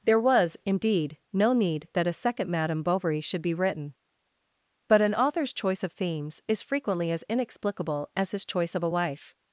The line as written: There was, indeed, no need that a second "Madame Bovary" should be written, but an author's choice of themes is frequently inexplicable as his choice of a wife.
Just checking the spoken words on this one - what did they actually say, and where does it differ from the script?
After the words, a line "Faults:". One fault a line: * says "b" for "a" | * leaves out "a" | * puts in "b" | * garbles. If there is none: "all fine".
There was, indeed, no need that a second "Madame Bovary" should be written, but an author's choice of themes is frequently as inexplicable as his choice of a wife.
Faults:
* puts in "as"